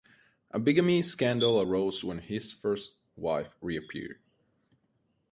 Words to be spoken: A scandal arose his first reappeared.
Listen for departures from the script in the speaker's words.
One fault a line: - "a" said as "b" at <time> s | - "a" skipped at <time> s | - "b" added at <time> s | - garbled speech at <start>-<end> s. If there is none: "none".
- "bigamy" added at 0.6 s
- "when" added at 2.1 s
- "wife" added at 3.2 s